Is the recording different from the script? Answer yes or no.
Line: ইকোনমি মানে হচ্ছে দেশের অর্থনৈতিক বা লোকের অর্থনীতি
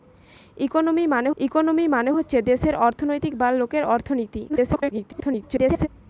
yes